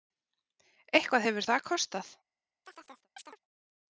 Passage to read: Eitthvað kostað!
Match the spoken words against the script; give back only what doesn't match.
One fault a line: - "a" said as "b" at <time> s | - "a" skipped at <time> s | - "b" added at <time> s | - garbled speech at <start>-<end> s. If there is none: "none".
- "hefur það" added at 1.3 s